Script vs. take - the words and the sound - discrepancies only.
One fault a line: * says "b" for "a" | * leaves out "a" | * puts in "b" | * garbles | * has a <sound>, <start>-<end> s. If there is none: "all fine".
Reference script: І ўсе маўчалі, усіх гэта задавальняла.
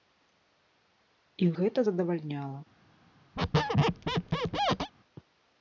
* leaves out "ўсе маўчалі усіх"
* has a squeak, 3.4-4.9 s